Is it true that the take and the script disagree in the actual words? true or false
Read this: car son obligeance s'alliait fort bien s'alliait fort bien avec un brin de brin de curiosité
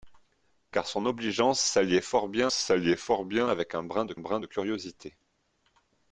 false